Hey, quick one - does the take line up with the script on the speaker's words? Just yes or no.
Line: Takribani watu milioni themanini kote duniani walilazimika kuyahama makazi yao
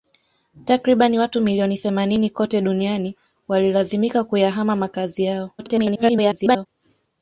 no